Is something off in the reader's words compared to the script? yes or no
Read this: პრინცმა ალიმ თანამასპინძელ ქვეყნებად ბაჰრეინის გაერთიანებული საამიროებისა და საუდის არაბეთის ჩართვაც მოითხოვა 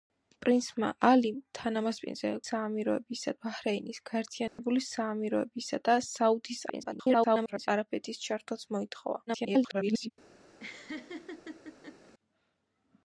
yes